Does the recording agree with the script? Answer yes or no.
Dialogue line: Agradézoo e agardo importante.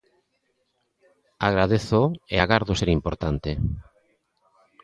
no